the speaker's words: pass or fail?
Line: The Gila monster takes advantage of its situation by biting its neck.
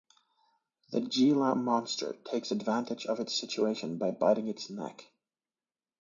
pass